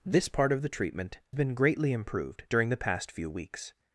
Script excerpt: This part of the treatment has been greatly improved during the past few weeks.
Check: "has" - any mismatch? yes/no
yes